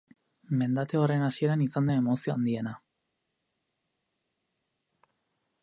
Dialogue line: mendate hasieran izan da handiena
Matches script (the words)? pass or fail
fail